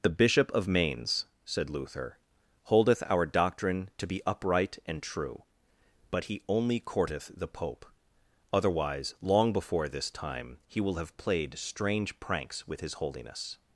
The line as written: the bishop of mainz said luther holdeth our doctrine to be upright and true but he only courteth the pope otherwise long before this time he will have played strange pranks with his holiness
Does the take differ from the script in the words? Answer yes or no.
no